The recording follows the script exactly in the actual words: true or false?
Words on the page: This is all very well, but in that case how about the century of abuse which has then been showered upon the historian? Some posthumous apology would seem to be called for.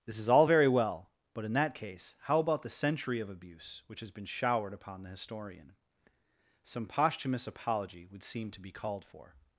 false